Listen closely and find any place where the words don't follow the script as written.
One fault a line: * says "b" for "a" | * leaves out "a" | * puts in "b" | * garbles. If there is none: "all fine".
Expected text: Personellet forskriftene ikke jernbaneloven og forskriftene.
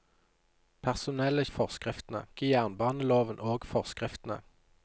all fine